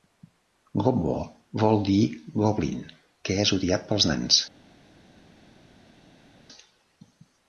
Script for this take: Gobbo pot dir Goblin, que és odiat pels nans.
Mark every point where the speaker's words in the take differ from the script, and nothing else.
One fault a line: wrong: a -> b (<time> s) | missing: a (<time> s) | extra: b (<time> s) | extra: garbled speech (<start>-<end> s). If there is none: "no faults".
wrong: pot -> vol (1.6 s)